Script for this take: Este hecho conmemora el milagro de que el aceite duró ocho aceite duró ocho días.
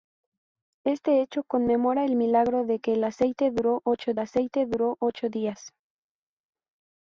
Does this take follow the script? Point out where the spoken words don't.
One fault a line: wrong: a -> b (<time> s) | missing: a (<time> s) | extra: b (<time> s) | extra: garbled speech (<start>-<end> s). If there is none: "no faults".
no faults